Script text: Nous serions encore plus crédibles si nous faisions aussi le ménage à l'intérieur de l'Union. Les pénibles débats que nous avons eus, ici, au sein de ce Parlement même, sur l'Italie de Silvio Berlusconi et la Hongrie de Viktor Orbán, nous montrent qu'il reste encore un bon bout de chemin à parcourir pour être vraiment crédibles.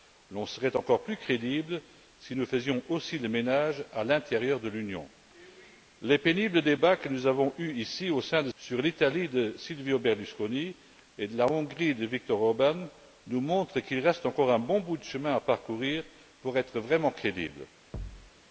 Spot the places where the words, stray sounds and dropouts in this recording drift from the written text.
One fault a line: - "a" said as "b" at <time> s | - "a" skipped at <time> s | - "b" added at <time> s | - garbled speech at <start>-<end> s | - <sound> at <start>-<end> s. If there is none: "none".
- "ce Parlement même" skipped at 8.5 s
- thud at 17.9-18.3 s